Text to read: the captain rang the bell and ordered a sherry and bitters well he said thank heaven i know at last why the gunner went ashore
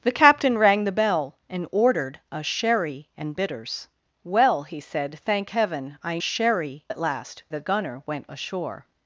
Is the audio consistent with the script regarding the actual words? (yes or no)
no